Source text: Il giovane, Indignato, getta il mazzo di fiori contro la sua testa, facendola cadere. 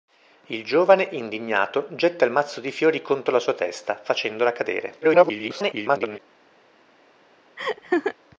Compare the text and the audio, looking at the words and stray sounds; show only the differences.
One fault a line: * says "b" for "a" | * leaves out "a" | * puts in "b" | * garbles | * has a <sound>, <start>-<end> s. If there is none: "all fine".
* garbles
* has a laugh, 7.6-8.1 s